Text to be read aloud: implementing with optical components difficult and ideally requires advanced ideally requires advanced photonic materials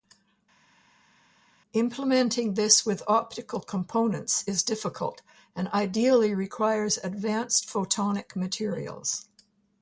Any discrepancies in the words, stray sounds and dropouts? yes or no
yes